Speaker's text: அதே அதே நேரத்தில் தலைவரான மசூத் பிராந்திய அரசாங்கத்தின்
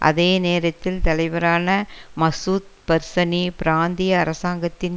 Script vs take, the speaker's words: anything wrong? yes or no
yes